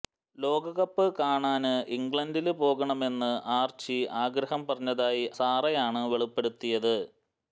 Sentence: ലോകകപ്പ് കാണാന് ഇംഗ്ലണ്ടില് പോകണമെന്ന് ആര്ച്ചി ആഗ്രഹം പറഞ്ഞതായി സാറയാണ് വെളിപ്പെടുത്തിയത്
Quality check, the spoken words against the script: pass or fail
pass